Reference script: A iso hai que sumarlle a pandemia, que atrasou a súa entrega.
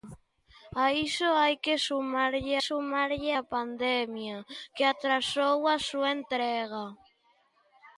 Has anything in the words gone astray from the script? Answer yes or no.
yes